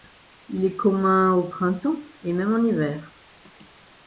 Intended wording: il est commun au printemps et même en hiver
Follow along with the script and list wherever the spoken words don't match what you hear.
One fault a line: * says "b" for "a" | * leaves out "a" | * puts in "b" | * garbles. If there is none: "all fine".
all fine